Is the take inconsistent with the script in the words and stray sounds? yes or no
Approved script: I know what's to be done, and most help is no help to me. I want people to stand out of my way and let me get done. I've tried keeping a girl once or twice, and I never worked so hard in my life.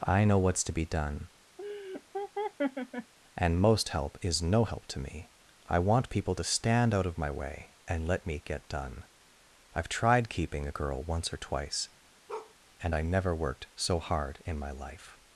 yes